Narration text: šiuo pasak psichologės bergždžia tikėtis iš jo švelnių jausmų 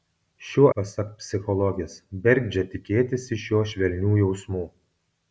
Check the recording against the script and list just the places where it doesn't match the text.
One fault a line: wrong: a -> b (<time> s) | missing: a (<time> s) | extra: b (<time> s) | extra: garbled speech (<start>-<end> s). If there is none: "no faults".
no faults